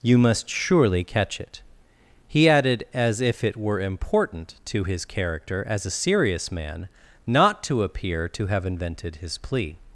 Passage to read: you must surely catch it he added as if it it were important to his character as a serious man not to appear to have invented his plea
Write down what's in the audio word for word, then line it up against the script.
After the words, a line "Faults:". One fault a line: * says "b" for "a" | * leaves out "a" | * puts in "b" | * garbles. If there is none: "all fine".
you must surely catch it he added as if it were important to his character as a serious man not to appear to have invented his plea
Faults:
* leaves out "it"